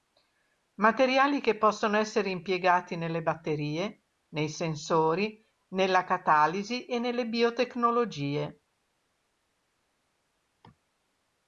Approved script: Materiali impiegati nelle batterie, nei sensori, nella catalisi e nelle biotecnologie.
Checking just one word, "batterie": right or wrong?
right